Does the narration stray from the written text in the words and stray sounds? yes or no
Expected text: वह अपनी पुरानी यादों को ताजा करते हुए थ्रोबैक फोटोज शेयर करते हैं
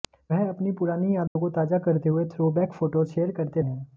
yes